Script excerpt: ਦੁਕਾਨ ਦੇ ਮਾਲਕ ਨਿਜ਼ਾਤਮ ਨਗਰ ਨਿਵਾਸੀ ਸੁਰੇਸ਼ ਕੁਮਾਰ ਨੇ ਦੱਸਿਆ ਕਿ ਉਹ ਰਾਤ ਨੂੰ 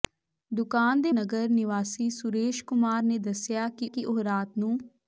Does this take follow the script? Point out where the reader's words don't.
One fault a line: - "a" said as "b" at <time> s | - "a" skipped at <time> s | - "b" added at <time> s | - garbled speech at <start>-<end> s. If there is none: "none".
- "ਮਾਲਕ ਨਿਜ਼ਾਤਮ" skipped at 1.1 s
- "ਕਿ" added at 3.9 s